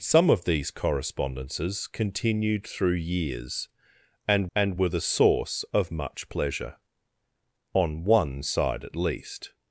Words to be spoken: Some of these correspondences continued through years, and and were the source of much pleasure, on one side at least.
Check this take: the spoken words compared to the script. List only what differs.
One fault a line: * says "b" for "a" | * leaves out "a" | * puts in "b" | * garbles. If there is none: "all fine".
all fine